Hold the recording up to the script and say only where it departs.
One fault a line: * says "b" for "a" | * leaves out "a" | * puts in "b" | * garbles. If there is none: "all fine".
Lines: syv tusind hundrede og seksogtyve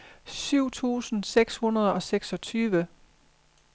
* puts in "seks"